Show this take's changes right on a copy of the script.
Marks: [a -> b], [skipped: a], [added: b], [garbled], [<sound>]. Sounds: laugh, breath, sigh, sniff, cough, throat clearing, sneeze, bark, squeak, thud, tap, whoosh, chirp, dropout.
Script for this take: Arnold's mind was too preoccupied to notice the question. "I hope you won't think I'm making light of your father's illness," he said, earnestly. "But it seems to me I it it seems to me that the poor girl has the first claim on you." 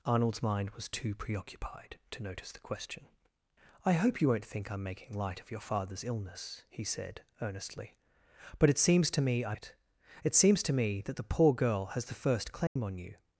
Arnold's mind was too preoccupied to notice the question. "I hope you won't think I'm making light of your father's illness," he said, earnestly. "But it seems to me I it it seems to me that the poor girl has the first claim [dropout] on you."